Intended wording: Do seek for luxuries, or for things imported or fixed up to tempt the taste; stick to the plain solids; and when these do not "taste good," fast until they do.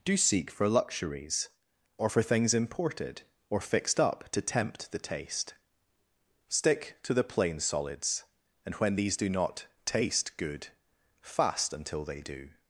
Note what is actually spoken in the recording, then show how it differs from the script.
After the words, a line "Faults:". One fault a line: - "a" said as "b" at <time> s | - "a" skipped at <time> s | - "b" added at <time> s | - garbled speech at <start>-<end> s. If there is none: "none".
Do seek for luxuries, or for things imported or fixed up to tempt the taste; stick to the plain solids; and when these do not "taste good," fast until they do.
Faults:
none